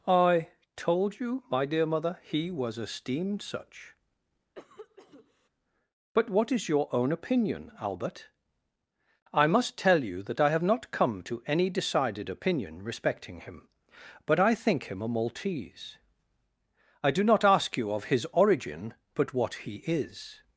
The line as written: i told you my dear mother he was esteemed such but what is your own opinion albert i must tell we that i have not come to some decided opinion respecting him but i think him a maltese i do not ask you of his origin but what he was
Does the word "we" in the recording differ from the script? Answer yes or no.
yes